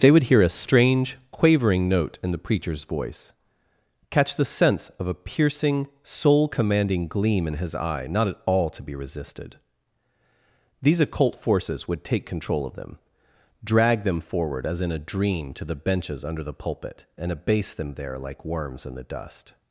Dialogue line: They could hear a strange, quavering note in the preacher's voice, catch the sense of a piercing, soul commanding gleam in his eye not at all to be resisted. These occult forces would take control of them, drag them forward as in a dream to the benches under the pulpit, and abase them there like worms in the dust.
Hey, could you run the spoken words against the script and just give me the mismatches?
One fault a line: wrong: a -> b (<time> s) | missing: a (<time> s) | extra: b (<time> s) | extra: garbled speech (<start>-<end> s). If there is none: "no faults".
wrong: could -> would (0.1 s)